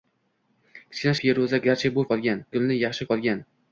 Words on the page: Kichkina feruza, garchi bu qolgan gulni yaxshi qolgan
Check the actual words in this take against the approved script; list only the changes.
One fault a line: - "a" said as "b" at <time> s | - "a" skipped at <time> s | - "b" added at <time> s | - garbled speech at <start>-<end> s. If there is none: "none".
none